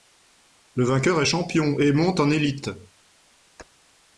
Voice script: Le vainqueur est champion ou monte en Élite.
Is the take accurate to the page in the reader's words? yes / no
no